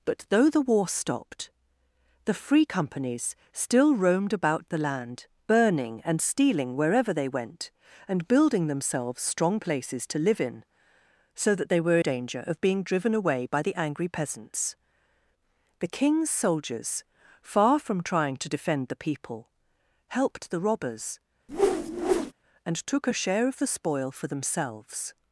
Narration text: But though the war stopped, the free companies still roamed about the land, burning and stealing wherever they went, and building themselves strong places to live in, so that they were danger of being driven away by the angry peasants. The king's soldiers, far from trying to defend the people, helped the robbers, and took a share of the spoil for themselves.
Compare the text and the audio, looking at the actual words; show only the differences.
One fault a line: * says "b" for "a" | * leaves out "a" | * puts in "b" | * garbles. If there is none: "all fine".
all fine